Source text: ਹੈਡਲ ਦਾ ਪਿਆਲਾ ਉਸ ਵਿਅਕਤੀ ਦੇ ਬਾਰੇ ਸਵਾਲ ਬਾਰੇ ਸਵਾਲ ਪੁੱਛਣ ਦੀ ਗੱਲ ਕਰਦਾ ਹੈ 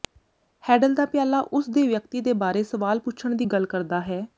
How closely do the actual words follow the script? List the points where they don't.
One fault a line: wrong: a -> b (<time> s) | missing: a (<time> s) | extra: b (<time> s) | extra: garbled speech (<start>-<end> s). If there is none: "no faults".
extra: ਦੇ (1.7 s)
missing: ਬਾਰੇ ਸਵਾਲ (3.0 s)